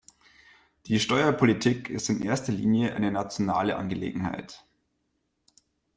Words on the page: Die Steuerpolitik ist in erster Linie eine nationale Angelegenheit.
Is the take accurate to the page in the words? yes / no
yes